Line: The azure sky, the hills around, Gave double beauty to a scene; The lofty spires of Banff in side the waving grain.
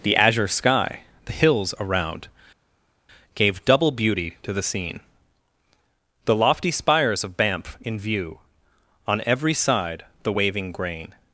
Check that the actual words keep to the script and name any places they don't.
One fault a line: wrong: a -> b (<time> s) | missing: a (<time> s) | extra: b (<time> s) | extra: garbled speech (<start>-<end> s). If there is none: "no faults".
wrong: a -> the (4.5 s)
extra: view On every (8.0 s)